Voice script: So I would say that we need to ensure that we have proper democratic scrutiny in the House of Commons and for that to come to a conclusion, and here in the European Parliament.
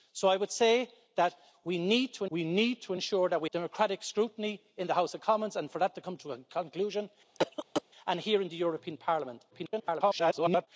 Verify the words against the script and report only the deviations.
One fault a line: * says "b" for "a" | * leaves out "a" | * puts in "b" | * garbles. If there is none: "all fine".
* puts in "we need to"
* leaves out "have proper"
* garbles